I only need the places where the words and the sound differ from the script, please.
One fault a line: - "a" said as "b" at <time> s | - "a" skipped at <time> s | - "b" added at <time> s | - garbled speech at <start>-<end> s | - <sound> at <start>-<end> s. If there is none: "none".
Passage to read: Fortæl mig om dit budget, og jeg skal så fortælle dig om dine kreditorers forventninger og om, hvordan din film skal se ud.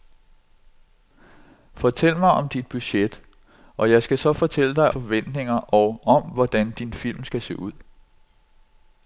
- "om dine kreditorers" skipped at 4.9 s